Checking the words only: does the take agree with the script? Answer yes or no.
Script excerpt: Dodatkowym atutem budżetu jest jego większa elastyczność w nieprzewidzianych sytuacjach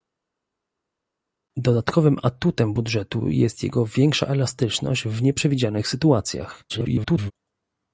no